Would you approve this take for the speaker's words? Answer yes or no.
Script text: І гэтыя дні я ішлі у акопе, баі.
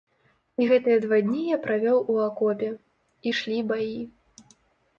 no